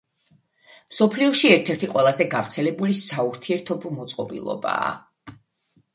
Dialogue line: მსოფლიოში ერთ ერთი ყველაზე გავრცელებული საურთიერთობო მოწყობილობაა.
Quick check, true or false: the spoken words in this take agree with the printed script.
true